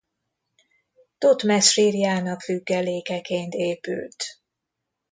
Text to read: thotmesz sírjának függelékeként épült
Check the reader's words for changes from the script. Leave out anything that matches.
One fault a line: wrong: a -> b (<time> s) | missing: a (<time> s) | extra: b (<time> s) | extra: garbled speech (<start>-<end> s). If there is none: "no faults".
no faults